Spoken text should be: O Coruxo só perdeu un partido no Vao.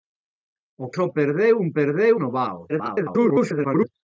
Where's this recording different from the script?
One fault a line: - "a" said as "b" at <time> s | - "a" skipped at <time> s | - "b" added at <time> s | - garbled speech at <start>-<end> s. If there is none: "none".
- "Coruxo" skipped at 0.9 s
- "partido" said as "perdeu" at 1.8 s
- garbled speech at 2.7-3.9 s